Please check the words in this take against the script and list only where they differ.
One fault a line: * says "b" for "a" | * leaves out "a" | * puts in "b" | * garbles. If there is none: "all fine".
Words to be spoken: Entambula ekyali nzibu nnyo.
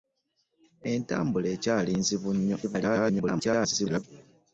* garbles